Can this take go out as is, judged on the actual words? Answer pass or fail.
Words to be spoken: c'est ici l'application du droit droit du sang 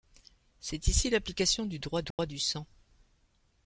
pass